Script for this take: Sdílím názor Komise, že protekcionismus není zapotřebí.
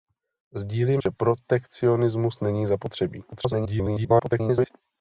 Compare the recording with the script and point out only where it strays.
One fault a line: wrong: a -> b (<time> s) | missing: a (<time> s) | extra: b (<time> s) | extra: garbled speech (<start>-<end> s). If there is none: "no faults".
missing: názor Komise (1.0 s)
extra: garbled speech (3.3-4.7 s)